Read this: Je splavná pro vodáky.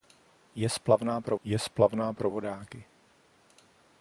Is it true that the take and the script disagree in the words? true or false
true